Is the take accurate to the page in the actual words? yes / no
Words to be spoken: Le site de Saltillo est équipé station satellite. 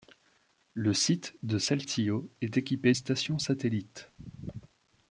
yes